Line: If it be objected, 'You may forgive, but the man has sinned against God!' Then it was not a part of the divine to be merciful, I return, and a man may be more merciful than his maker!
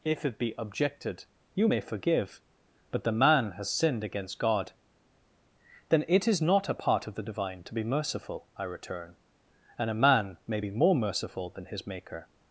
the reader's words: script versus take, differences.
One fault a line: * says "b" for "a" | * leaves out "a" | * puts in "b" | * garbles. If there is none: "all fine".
* says "is" for "was"